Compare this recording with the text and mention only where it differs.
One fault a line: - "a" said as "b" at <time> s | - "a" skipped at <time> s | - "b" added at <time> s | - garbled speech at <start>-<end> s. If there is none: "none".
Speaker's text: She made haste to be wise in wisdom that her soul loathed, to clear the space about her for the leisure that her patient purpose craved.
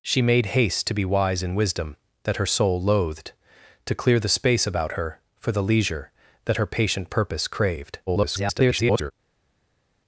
- garbled speech at 8.1-9.1 s